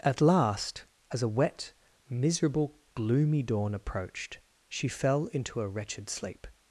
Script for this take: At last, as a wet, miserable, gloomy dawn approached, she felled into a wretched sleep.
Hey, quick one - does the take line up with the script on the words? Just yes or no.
no